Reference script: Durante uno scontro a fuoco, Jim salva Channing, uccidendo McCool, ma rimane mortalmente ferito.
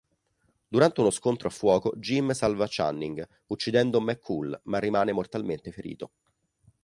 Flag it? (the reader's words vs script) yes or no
no